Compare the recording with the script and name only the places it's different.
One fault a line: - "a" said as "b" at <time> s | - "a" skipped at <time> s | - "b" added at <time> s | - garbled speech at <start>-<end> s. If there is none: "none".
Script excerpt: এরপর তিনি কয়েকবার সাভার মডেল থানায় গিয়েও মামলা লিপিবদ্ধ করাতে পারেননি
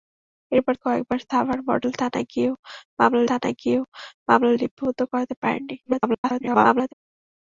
- "তিনি" skipped at 0.7 s
- "থানায় গিয়েও মামলা" added at 3.3 s
- garbled speech at 5.8-6.9 s